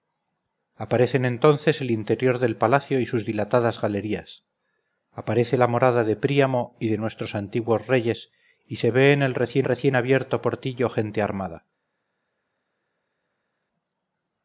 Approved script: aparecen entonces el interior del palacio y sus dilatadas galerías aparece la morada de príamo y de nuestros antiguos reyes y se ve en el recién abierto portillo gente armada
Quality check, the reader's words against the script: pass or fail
fail